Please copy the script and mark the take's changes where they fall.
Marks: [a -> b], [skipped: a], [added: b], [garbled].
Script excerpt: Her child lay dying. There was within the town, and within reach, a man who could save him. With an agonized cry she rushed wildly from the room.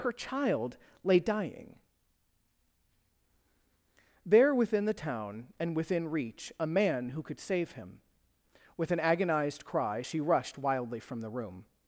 Her child lay dying. There [skipped: was] within the town, and within reach, a man who could save him. With an agonized cry she rushed wildly from the room.